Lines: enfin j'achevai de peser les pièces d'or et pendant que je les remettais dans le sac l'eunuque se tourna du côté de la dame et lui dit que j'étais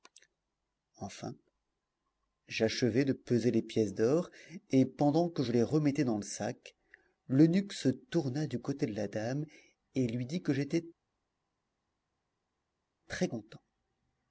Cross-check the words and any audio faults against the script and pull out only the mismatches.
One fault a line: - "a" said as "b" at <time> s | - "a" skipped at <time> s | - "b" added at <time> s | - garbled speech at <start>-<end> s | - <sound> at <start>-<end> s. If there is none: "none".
none